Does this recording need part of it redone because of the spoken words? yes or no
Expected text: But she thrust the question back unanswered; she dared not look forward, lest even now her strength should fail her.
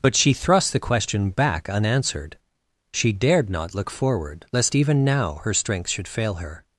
no